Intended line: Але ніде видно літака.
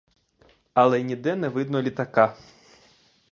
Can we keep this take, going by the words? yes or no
no